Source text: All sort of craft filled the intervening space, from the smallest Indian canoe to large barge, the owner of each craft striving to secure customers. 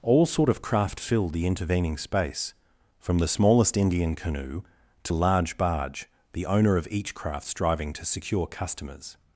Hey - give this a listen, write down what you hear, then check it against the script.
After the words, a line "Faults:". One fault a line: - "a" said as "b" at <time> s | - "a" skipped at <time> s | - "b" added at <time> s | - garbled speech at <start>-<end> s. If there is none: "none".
All sort of craft filled the intervening space, from the smallest Indian canoe to large barge, the owner of each craft striving to secure customers.
Faults:
none